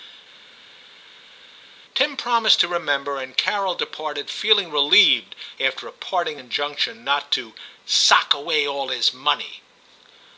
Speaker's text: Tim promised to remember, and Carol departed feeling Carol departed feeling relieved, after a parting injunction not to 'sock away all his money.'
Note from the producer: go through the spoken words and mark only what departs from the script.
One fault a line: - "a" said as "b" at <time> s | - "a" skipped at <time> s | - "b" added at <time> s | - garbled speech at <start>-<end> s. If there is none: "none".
- "Carol departed feeling" skipped at 4.7 s